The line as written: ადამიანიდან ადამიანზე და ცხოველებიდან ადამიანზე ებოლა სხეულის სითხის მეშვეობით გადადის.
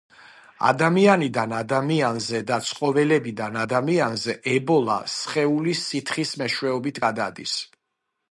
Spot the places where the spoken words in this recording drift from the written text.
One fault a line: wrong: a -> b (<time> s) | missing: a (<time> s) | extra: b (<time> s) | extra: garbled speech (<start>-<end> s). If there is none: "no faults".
no faults